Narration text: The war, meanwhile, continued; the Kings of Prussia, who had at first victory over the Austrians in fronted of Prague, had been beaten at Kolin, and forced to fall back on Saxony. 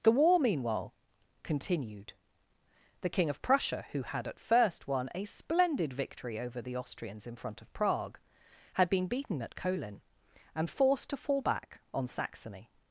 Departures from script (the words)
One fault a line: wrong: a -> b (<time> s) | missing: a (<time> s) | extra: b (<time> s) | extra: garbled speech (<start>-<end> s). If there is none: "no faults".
wrong: Kings -> King (3.1 s)
extra: won a splendid (4.9 s)
wrong: fronted -> front (7.4 s)